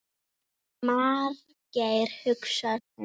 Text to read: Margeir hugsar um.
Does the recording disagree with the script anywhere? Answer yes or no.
no